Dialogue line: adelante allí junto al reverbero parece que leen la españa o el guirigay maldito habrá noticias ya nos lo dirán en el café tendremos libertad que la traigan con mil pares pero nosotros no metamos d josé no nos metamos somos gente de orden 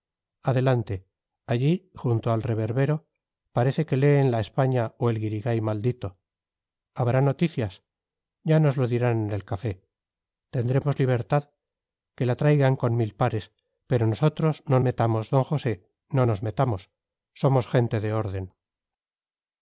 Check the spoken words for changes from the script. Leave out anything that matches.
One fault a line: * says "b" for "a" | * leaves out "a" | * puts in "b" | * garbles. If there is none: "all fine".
all fine